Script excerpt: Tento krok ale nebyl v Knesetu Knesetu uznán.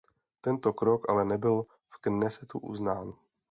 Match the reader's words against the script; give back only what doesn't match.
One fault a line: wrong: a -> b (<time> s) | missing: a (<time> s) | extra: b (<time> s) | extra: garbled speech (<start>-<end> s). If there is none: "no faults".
missing: Knesetu (2.6 s)